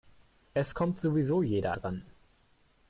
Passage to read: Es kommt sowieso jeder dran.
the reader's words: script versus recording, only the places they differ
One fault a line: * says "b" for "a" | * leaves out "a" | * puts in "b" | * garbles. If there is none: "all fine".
all fine